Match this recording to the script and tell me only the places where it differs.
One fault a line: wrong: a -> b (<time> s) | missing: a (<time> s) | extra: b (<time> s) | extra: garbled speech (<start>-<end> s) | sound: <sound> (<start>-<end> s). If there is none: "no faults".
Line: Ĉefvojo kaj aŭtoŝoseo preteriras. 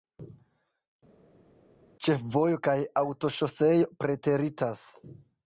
no faults